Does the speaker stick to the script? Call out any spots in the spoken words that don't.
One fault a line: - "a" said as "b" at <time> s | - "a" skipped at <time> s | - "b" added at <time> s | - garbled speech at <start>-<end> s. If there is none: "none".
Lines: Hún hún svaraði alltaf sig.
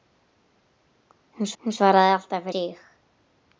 none